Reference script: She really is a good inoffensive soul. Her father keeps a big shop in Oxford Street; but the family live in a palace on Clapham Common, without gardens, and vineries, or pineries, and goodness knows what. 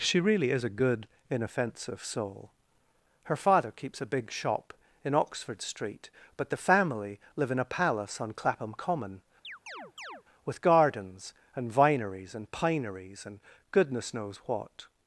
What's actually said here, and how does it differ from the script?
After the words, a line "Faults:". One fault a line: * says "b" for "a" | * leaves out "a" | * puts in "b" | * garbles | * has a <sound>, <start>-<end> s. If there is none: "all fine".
She really is a good inoffensive soul. Her father keeps a big shop in Oxford Street; but the family live in a palace on Clapham Common, with gardens, and vineries, and pineries, and goodness knows what.
Faults:
* has a chirp, 9.4-10.2 s
* says "with" for "without"
* says "and" for "or"